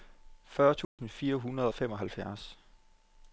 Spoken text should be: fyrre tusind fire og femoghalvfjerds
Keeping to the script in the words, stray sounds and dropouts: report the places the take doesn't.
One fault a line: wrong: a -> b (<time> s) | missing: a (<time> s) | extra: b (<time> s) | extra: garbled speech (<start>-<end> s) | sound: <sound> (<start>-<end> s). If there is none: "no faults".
sound: dropout (0.8-1.0 s)
extra: hundrede (1.4 s)